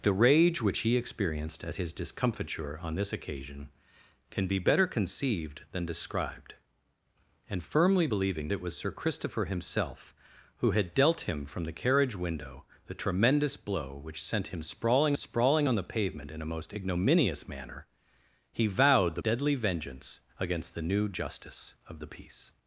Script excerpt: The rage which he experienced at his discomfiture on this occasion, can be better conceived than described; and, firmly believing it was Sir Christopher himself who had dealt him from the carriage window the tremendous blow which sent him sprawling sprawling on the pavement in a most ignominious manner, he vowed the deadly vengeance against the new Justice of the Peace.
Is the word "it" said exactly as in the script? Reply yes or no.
yes